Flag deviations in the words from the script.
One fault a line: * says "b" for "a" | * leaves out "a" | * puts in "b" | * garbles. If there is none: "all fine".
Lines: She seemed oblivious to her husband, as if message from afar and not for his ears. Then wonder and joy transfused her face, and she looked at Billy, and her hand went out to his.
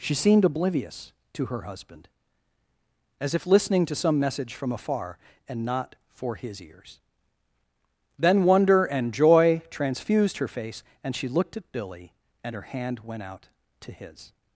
* puts in "listening to some"